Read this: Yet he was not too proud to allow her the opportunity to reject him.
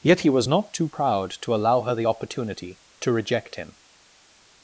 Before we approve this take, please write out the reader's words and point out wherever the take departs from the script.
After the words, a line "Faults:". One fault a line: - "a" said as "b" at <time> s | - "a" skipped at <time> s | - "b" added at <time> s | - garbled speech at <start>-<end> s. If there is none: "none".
Yet he was not too proud to allow her the opportunity to reject him.
Faults:
none